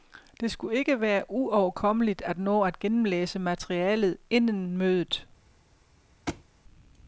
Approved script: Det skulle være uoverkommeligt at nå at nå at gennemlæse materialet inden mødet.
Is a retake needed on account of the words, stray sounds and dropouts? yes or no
yes